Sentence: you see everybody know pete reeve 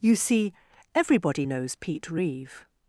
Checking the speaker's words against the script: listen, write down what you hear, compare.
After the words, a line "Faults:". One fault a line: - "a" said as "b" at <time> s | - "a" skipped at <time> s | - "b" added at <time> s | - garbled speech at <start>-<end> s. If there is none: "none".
you see everybody knows pete reeve
Faults:
- "know" said as "knows" at 1.4 s